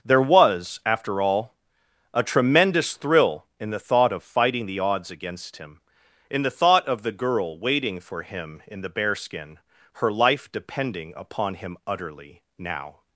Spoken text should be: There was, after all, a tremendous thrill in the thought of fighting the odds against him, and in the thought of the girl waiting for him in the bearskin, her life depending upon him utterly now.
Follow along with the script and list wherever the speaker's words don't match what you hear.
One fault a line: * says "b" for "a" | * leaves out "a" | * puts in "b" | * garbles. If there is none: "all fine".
* leaves out "and"